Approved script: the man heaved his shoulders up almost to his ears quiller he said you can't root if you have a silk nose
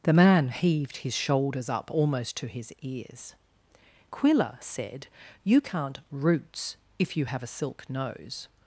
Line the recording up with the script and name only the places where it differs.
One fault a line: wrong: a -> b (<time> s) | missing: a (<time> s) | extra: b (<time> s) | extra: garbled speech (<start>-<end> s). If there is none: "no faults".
missing: he (4.6 s)
wrong: root -> roots (6.1 s)